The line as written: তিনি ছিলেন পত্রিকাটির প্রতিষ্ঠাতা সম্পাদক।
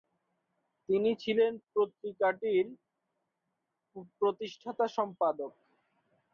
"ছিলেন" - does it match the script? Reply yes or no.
yes